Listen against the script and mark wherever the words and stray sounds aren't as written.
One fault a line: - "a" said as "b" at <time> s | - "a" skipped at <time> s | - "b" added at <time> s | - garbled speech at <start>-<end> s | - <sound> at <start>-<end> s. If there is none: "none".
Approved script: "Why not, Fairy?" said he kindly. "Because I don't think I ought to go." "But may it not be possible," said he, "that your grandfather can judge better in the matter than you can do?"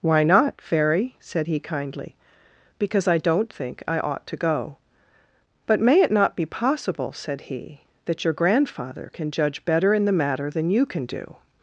none